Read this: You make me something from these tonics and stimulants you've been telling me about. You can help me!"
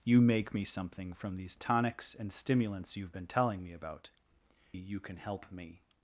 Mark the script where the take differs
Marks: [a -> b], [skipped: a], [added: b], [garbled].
You make me something from these tonics and stimulants you've been telling me about. You can help me!"